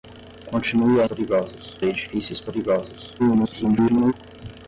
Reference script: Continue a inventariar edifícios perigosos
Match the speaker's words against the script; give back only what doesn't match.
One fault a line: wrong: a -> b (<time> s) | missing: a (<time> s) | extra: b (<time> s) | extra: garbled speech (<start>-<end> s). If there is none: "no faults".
wrong: inventariar -> perigosos (1.0 s)
extra: garbled speech (3.2-4.1 s)